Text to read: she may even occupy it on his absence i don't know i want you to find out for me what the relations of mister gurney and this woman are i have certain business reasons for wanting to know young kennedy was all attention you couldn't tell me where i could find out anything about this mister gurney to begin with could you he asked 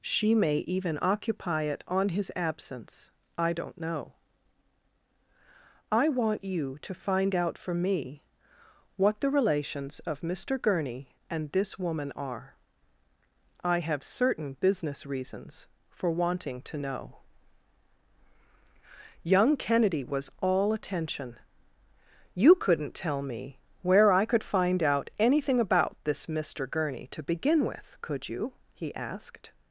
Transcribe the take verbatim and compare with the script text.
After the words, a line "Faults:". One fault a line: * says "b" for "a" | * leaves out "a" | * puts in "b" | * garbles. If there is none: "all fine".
she may even occupy it on his absence i don't know i want you to find out for me what the relations of mister gurney and this woman are i have certain business reasons for wanting to know young kennedy was all attention you couldn't tell me where i could find out anything about this mister gurney to begin with could you he asked
Faults:
all fine